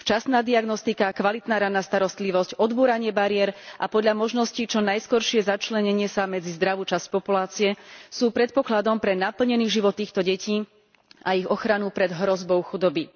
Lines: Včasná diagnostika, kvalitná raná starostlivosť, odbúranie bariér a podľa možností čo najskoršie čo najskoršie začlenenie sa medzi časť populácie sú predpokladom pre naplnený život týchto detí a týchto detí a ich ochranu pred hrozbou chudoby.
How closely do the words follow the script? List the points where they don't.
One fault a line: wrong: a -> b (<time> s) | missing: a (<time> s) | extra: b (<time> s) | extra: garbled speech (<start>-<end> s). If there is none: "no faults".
missing: čo najskoršie (5.5 s)
extra: zdravú (6.6 s)
missing: týchto detí a (11.4 s)